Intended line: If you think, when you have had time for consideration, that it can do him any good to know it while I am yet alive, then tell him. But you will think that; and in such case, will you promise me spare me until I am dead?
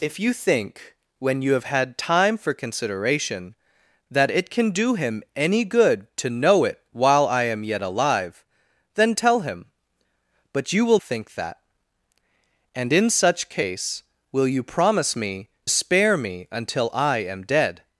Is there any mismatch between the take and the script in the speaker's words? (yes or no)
no